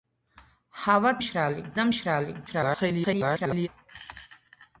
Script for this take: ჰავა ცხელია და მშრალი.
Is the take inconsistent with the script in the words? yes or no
yes